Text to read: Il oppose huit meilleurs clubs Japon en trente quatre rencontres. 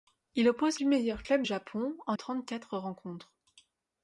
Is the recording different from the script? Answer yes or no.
no